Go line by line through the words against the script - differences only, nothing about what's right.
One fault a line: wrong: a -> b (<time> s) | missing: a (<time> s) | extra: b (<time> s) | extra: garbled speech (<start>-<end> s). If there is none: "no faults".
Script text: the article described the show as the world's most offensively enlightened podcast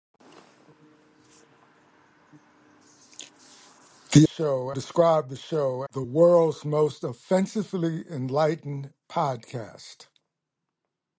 wrong: article -> show (4.2 s)
missing: as (5.8 s)